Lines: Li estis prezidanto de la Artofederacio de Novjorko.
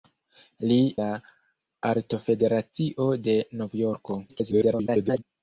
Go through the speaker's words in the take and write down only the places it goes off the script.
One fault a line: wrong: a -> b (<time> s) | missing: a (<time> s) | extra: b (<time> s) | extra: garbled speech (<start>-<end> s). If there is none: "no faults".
missing: estis prezidanto de (0.8 s)
extra: garbled speech (4.3-5.2 s)